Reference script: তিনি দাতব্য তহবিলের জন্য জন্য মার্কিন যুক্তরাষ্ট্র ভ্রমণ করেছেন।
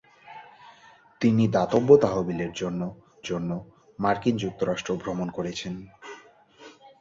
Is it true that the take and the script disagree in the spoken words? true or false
false